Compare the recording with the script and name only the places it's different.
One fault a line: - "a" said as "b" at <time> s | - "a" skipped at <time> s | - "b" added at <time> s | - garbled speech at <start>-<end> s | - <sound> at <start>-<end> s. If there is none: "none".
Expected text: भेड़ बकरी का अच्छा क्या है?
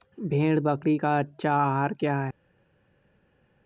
- "आहार" added at 1.5 s